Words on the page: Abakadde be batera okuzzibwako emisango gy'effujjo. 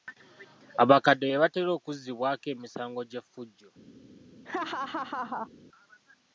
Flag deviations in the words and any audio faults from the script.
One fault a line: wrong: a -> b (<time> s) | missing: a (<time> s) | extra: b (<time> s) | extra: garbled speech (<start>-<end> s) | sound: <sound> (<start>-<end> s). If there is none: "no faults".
sound: laugh (4.4-5.5 s)